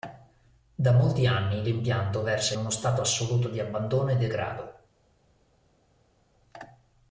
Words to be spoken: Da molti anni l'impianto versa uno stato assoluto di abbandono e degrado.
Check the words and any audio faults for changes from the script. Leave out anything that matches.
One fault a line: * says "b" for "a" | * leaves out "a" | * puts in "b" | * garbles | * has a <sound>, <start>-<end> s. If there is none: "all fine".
all fine